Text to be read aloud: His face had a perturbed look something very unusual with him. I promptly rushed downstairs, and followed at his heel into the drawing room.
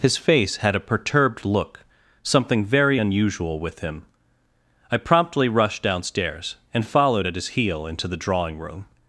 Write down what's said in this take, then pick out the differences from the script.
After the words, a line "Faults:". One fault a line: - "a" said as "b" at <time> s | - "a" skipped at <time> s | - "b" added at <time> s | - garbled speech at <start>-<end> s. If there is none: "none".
His face had a perturbed look something very unusual with him. I promptly rushed downstairs, and followed at his heel into the drawing room.
Faults:
none